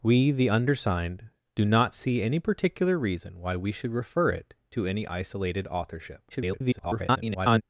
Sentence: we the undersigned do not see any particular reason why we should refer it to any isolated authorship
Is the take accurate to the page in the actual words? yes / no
no